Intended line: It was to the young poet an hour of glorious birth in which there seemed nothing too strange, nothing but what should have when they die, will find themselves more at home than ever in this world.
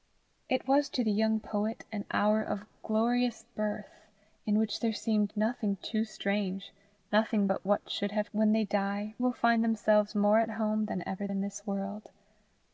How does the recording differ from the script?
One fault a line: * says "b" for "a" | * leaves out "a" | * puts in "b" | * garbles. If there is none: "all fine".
all fine